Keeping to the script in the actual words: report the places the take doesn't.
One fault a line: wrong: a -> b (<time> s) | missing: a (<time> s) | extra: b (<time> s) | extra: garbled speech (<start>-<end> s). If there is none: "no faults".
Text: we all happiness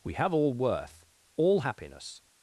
extra: have all worth (0.1 s)